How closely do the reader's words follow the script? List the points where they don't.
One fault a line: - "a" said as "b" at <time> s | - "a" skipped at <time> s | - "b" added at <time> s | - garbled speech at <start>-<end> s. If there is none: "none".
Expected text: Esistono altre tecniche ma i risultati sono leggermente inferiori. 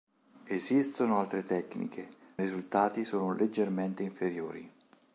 - "ma" skipped at 2.1 s